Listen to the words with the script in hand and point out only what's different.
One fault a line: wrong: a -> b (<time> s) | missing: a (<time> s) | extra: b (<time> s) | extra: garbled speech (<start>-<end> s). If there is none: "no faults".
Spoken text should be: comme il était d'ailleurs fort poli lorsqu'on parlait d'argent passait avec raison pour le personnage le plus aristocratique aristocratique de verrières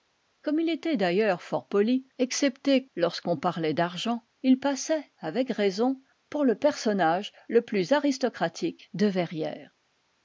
extra: excepté (2.2 s)
extra: il (4.4 s)
missing: aristocratique (8.9 s)